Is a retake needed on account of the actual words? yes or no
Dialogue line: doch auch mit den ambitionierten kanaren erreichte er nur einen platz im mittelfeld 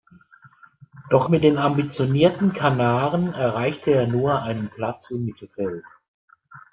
yes